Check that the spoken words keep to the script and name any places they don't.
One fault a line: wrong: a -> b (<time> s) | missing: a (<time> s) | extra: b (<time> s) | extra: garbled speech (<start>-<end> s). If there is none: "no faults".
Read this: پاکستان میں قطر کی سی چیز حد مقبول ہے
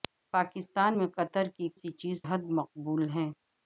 no faults